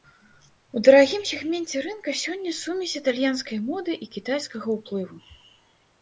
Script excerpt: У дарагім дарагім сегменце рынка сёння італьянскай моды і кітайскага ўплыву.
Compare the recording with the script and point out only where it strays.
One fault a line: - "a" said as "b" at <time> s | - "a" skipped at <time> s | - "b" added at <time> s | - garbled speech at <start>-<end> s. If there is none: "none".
- "дарагім" skipped at 1.2 s
- "сумесь" added at 2.6 s